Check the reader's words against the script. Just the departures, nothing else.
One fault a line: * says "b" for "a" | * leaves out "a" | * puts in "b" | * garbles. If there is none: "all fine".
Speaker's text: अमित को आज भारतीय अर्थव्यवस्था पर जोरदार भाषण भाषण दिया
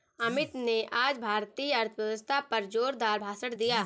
* says "ने" for "को"
* leaves out "भाषण"